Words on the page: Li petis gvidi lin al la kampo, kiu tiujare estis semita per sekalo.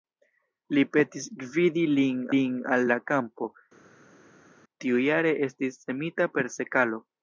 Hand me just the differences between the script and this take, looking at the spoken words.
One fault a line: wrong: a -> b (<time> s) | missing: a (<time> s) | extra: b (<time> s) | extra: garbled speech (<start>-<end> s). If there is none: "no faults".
extra: lin (2.3 s)
missing: kiu (3.5 s)